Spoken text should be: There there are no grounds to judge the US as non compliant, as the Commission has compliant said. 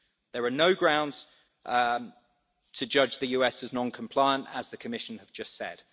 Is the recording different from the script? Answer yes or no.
yes